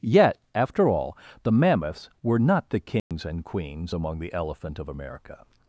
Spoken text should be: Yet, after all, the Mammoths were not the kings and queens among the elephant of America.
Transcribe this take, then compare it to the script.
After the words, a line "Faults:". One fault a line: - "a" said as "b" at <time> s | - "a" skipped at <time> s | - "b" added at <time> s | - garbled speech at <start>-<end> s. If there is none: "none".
Yet, after all, the Mammoths were not the kings and queens among the elephant of America.
Faults:
none